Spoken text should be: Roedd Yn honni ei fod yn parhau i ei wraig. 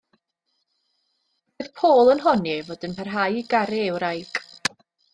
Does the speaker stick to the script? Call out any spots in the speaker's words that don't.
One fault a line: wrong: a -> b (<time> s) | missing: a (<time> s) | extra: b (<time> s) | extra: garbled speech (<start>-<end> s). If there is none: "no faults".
extra: Paul (1.8 s)
extra: garu (3.6 s)